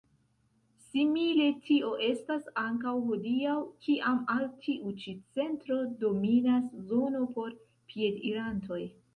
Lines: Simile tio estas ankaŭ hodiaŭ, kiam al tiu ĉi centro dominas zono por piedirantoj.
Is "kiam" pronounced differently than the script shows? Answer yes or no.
no